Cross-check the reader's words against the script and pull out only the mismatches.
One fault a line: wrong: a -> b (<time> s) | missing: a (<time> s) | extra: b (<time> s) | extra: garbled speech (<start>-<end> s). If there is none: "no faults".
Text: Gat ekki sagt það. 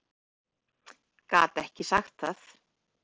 no faults